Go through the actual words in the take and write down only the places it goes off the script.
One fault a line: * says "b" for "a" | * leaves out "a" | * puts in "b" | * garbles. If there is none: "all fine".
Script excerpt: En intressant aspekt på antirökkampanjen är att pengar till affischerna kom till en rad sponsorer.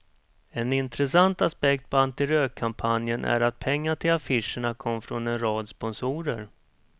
* says "från" for "till"